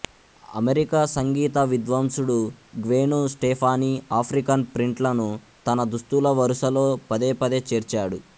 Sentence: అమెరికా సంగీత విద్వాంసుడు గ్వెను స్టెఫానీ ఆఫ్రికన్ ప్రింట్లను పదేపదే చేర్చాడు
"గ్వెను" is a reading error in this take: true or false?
false